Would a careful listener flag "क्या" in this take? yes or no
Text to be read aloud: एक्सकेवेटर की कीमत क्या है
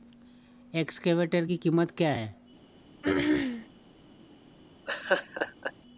no